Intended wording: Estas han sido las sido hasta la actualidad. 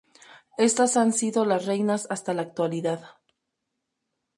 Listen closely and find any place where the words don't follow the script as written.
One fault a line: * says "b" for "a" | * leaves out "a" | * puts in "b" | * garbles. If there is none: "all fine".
* says "reinas" for "sido"